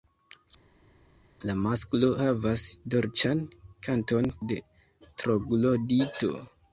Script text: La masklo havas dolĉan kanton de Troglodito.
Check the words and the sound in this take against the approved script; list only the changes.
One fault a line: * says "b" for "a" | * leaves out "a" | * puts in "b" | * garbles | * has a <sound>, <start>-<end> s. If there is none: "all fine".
all fine